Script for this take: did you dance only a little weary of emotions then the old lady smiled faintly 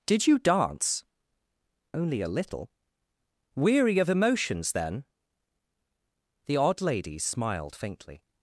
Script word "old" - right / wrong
wrong